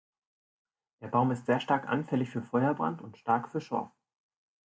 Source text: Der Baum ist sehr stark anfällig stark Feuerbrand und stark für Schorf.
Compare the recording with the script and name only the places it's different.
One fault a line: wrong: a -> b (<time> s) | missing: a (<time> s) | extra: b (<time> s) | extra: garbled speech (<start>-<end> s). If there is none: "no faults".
wrong: stark -> für (2.3 s)